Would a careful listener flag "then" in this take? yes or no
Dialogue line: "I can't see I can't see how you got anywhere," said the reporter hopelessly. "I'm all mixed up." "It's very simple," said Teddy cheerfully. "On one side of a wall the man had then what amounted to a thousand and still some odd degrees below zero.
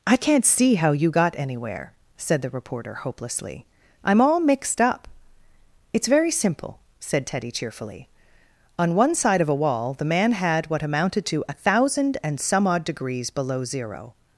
yes